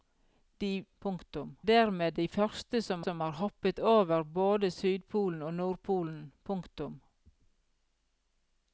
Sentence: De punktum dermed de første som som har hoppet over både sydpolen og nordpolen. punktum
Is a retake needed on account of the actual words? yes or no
no